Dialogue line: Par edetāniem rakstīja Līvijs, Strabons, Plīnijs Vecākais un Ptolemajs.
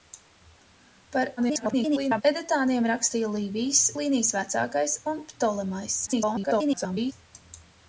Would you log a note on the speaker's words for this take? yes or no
yes